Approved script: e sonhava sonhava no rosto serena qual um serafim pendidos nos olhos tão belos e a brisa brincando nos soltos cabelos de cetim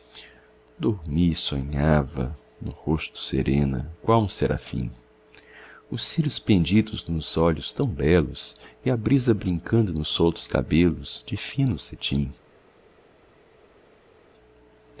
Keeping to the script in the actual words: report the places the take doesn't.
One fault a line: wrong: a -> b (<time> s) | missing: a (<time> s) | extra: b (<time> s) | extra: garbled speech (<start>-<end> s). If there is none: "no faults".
missing: sonhava (2.4 s)
extra: os cílios (5.9 s)
extra: fino (11.3 s)